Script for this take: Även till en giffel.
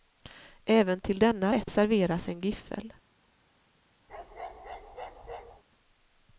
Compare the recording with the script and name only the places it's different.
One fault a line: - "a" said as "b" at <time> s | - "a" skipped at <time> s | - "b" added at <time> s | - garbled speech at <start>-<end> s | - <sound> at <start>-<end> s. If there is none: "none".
- "denna rätt serveras" added at 1.2 s
- bark at 4.1-5.6 s